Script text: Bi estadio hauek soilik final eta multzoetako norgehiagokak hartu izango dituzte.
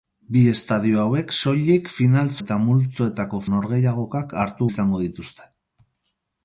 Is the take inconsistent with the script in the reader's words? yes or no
no